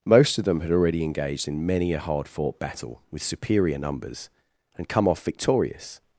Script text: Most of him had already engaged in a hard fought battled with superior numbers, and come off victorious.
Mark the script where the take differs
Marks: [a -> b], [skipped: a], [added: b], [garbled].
Most of [him -> them] had already engaged in [added: many] a hard fought [battled -> battle] with superior numbers, and come off victorious.